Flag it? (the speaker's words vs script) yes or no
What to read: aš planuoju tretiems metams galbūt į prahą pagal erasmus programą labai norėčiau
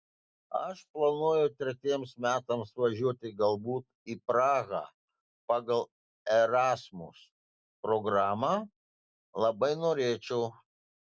yes